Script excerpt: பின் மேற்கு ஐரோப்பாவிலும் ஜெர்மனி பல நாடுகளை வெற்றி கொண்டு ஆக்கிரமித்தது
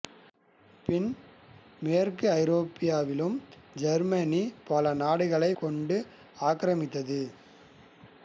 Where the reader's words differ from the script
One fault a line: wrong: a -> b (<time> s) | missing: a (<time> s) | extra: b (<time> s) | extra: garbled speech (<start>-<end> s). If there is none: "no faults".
missing: வெற்றி (5.5 s)